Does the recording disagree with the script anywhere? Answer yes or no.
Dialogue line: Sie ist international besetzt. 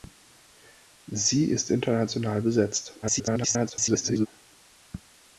yes